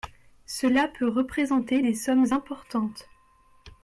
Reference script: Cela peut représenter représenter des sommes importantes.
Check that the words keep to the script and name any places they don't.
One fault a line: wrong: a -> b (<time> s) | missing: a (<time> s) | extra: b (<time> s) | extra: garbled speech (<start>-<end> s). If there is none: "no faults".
missing: représenter (1.8 s)